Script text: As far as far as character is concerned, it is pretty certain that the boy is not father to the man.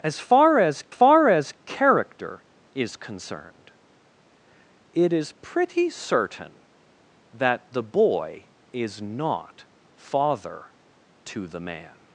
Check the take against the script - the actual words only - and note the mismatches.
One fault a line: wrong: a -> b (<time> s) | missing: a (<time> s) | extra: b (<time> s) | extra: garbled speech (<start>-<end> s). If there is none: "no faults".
no faults